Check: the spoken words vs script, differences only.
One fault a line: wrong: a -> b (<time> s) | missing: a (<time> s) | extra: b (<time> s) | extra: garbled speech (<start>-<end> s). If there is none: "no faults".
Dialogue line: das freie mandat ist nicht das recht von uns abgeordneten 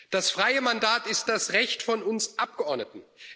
missing: nicht (1.3 s)